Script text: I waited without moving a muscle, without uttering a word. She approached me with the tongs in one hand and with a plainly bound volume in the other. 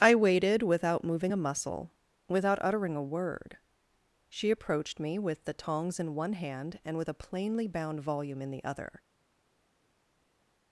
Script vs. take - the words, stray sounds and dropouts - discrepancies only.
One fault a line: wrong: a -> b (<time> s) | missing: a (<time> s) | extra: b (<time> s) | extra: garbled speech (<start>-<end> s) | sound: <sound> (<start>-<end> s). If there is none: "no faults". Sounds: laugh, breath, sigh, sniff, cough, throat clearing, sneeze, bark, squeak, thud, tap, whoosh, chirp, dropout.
no faults